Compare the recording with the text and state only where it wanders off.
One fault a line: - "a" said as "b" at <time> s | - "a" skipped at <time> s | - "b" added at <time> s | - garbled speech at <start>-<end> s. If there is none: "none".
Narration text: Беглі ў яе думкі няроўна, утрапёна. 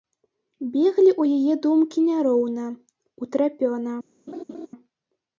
none